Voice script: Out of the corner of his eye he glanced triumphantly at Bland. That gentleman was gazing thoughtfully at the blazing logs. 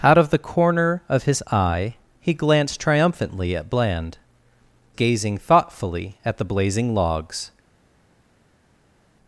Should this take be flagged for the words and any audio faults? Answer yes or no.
yes